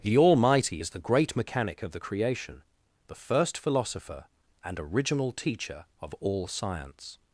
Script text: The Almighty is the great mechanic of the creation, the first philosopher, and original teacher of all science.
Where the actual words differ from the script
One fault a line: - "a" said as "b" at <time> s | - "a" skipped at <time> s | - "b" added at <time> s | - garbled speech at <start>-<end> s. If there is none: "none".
none